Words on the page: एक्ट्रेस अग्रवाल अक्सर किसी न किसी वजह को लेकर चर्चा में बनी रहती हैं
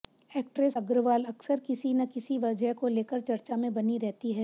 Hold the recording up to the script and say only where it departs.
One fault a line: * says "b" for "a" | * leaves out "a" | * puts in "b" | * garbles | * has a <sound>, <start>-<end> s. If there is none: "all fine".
all fine